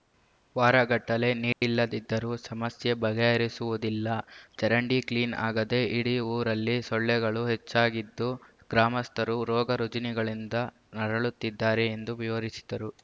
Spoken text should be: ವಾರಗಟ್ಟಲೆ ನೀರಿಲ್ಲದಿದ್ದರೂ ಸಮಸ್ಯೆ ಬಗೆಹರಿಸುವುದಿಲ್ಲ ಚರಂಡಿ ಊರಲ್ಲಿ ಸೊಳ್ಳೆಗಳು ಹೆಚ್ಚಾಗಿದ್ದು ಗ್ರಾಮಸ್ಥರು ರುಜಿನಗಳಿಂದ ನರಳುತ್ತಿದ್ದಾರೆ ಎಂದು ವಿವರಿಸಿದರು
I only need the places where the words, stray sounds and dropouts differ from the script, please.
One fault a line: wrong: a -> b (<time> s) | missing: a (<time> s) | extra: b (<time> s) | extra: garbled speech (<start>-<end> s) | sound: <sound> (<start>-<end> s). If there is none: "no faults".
sound: dropout (1.5-1.6 s)
extra: ಕ್ಲೀನ್ ಆಗದೆ ಇಡೀ (5.1 s)
extra: ರೋಗ (9.4 s)